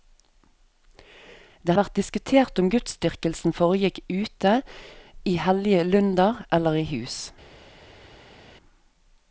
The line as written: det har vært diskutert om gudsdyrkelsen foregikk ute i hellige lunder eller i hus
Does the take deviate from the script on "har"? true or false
true